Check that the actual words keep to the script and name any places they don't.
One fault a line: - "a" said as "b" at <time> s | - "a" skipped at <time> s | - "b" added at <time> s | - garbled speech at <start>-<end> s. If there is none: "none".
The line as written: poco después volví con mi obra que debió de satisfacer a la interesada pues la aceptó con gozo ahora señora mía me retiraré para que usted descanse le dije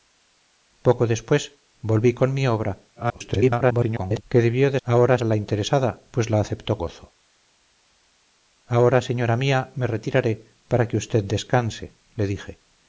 - garbled speech at 3.0-4.2 s
- "satisfacer" said as "ahora" at 4.8 s
- "con" skipped at 6.8 s